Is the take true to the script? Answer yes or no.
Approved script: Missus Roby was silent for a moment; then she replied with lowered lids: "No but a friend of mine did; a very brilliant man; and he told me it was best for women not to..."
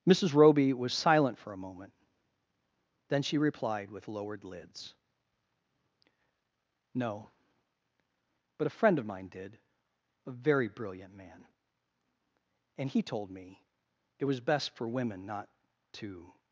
yes